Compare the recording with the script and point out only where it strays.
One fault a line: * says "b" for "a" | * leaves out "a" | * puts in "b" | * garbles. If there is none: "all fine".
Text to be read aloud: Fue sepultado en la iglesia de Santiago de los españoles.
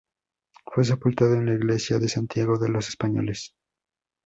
all fine